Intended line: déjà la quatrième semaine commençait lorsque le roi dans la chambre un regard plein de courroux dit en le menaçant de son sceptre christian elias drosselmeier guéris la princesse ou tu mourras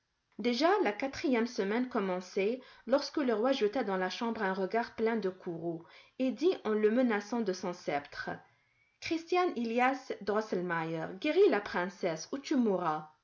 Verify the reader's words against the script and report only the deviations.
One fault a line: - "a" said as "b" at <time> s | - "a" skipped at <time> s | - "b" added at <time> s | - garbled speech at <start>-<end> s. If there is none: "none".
- "jeta" added at 3.5 s
- "et" added at 6.2 s